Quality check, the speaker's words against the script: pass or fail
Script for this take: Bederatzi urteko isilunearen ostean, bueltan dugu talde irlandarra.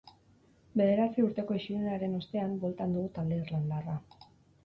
pass